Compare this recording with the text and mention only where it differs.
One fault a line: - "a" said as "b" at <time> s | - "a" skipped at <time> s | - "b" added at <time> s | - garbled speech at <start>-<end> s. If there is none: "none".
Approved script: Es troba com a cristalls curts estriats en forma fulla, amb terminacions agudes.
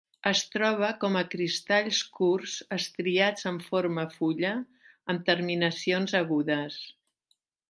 none